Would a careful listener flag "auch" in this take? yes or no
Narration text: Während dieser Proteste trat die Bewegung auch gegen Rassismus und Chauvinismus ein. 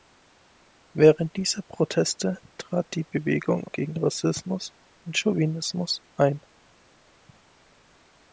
yes